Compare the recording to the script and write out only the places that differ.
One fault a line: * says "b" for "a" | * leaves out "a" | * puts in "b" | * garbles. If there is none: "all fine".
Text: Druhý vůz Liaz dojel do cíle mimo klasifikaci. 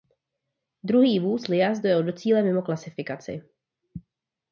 all fine